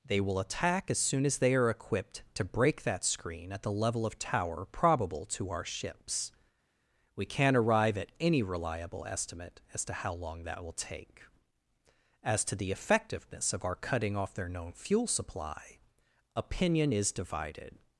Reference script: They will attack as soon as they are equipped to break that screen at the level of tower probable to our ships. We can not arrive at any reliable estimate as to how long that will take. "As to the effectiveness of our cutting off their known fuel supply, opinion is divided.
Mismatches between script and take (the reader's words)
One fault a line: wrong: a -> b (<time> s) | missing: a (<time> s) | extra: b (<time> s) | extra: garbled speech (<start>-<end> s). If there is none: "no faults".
no faults